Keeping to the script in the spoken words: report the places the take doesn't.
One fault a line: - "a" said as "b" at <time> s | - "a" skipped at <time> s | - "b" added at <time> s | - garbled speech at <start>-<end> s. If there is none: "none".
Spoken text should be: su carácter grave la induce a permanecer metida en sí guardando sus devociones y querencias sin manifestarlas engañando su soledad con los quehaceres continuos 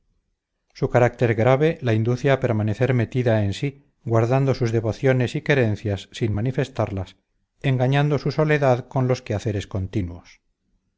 none